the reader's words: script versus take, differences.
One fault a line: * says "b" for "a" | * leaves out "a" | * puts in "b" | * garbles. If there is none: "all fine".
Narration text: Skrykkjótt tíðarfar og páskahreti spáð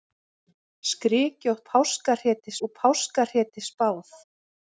* says "páskahreti" for "tíðarfar"